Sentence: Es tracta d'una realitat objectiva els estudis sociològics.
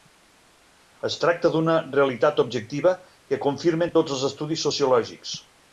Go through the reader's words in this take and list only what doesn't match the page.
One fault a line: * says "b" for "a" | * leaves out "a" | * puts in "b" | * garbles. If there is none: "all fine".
* puts in "que confirmen tots"